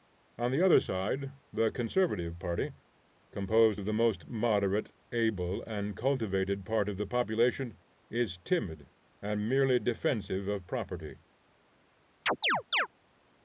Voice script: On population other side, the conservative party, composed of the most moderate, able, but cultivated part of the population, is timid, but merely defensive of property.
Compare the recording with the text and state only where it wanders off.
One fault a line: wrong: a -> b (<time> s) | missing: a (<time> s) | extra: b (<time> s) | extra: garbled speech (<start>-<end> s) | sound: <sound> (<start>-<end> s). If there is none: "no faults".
wrong: population -> the (0.5 s)
wrong: but -> and (5.6 s)
wrong: but -> and (9.2 s)
sound: chirp (12.3-12.9 s)